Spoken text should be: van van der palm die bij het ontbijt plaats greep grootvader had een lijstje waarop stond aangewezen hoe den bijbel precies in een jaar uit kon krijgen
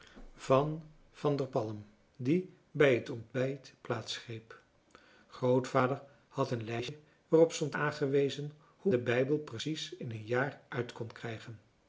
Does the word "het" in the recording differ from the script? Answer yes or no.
no